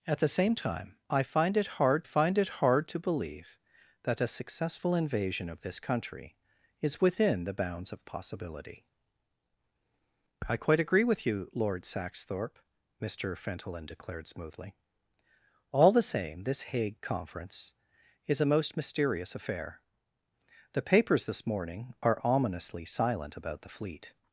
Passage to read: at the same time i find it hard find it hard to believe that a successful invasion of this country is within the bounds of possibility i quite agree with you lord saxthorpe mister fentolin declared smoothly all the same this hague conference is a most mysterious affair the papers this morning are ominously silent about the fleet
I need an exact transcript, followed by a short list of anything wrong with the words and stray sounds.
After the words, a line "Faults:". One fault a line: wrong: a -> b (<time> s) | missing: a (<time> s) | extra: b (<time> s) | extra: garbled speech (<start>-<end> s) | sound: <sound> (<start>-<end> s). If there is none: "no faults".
at the same time i find it hard find it hard to believe that a successful invasion of this country is within the bounds of possibility i quite agree with you lord saxthorpe mister fentolin declared smoothly all the same this hague conference is a most mysterious affair the papers this morning are ominously silent about the fleet
Faults:
no faults